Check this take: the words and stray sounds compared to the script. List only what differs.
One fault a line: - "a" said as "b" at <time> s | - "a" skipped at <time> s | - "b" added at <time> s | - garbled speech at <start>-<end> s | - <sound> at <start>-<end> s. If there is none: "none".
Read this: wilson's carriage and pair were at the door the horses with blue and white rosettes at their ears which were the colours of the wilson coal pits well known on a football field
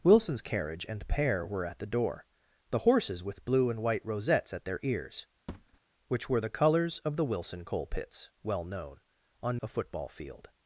- thud at 5.5-5.8 s